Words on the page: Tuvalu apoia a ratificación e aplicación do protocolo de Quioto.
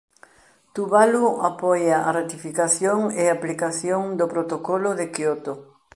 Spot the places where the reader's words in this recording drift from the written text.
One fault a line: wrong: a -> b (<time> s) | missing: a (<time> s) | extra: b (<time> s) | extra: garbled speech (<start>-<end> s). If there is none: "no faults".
no faults